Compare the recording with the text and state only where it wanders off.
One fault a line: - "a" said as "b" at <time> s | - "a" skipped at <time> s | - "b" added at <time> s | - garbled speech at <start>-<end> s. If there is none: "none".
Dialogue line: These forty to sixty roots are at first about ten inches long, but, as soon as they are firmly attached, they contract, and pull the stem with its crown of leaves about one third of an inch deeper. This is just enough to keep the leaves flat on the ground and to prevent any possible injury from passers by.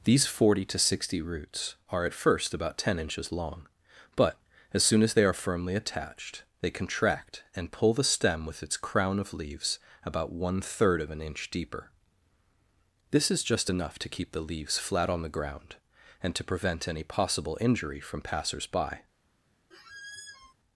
none